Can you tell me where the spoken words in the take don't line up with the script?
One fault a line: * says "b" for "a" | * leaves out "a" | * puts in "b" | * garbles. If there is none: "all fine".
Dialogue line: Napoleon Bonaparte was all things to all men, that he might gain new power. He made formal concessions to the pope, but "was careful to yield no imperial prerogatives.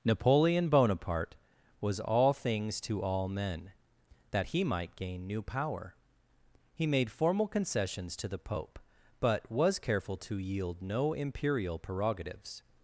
all fine